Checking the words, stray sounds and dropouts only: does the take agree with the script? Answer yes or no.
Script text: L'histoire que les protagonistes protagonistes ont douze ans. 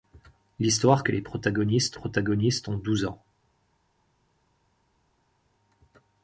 yes